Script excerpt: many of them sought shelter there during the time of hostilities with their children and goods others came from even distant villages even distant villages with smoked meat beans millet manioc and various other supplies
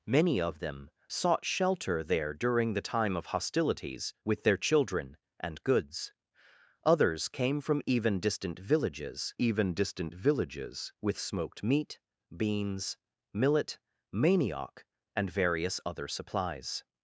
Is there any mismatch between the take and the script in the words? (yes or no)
no